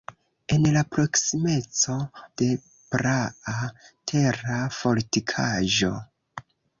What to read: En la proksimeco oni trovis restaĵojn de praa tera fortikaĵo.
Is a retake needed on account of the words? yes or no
yes